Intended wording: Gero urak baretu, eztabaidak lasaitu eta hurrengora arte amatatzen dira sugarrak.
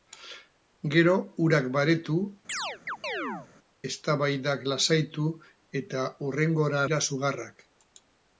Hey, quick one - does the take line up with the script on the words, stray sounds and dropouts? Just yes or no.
no